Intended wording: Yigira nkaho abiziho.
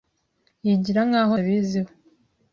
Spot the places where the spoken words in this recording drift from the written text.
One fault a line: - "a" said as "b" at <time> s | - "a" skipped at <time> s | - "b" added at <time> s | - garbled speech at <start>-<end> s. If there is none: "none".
none